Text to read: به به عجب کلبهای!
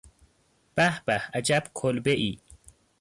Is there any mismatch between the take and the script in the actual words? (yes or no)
no